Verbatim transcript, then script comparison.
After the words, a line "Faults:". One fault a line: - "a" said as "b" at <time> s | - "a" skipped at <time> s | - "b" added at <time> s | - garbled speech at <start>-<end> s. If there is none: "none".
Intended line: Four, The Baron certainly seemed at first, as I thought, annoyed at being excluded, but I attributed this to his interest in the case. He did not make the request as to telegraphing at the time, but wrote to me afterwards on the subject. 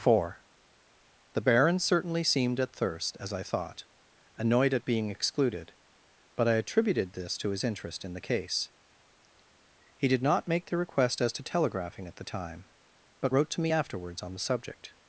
Four, The Baron certainly seemed at thirst, as I thought, annoyed at being excluded, but I attributed this to his interest in the case. He did not make the request as to telegraphing at the time, but wrote to me afterwards on the subject.
Faults:
- "first" said as "thirst" at 2.8 s